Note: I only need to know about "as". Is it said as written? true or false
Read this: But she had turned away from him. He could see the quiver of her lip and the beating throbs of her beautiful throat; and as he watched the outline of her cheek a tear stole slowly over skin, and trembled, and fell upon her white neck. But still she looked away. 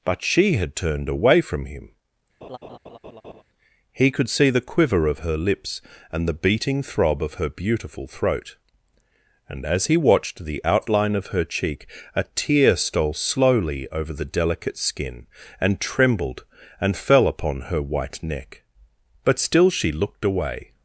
true